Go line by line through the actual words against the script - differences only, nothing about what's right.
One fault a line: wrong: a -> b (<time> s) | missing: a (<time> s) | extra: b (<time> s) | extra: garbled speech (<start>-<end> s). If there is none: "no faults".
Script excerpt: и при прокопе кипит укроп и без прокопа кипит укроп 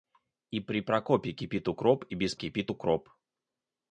missing: прокопа (2.4 s)